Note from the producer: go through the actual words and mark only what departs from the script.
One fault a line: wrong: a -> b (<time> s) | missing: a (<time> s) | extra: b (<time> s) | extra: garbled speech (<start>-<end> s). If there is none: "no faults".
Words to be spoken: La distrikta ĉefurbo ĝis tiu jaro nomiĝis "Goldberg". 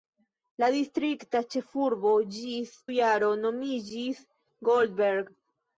missing: tiu (2.7 s)